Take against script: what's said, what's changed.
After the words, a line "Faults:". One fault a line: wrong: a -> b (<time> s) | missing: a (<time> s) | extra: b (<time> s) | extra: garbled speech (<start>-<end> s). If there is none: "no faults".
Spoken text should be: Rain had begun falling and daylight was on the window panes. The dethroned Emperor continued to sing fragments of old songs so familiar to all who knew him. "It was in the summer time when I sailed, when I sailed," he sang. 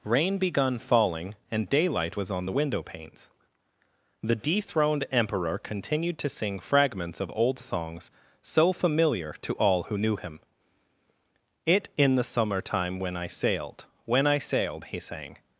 Rain begun falling and daylight was on the window panes. The dethroned Emperor continued to sing fragments of old songs so familiar to all who knew him. "It in the summer time when I sailed, when I sailed," he sang.
Faults:
missing: had (0.4 s)
missing: was (11.9 s)